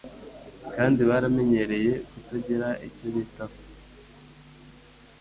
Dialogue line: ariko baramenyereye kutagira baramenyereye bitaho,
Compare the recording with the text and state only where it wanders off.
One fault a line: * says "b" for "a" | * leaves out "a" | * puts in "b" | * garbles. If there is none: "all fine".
* says "kandi" for "ariko"
* says "icyo" for "baramenyereye"